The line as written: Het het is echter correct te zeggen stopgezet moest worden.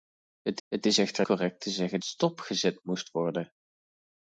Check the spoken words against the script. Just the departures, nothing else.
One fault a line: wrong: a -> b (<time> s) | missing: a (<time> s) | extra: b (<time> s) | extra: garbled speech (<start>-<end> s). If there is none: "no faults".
no faults